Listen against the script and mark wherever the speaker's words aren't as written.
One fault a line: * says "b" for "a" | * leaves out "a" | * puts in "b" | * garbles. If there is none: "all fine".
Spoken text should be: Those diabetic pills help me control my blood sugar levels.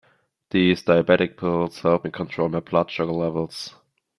* says "These" for "Those"